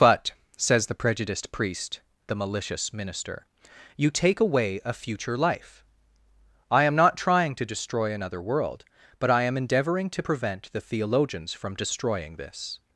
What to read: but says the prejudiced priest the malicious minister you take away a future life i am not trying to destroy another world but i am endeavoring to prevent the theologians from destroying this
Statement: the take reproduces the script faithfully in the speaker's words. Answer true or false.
true